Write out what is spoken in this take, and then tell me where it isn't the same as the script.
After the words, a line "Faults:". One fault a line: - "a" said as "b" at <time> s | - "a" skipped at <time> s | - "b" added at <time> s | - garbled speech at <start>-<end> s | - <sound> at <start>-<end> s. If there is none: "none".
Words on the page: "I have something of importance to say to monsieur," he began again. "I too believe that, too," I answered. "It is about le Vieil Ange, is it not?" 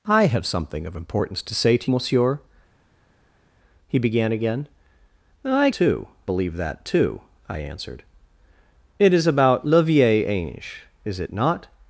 "I have something of importance to say to monsieur," he began again. "I too believe that, too," I answered. "It is about le Vieil Ange, is it not?"
Faults:
none